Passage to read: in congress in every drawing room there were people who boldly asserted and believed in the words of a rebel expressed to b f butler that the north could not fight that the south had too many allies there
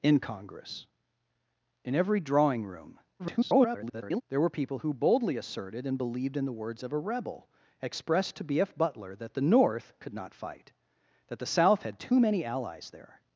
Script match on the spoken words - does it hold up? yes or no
no